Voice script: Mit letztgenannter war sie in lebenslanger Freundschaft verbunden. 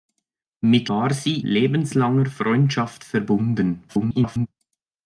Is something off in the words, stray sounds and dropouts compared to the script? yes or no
yes